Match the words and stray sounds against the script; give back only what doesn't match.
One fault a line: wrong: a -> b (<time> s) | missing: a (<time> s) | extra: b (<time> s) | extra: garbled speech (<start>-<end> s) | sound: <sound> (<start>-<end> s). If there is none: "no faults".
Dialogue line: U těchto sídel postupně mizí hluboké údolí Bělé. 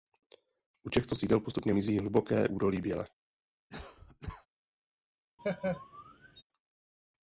sound: cough (3.7-4.5 s)
sound: laugh (5.4-6.4 s)